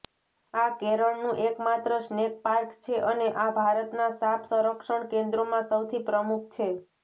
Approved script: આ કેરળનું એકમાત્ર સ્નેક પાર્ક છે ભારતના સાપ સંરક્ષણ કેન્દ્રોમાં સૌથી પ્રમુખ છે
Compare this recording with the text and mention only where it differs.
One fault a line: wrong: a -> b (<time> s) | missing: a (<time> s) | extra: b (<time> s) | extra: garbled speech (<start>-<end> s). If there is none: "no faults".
extra: અને આ (3.0 s)